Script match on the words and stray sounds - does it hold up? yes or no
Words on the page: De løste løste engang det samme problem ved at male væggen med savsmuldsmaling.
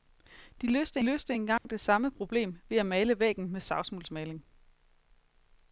no